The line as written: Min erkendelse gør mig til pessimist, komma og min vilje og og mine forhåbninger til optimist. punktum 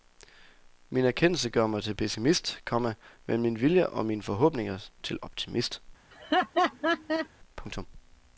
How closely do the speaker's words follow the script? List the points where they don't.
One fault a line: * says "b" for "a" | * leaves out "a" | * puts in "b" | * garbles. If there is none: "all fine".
* says "men" for "og"
* leaves out "og"